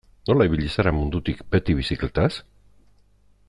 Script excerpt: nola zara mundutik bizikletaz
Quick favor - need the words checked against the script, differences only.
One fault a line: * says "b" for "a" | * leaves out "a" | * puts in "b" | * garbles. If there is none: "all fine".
* puts in "ibili"
* puts in "beti"